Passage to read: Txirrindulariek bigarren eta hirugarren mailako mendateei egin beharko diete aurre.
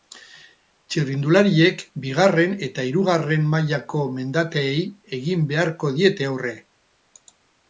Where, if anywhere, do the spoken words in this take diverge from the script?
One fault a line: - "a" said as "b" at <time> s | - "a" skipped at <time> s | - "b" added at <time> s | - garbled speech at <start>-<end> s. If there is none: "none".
none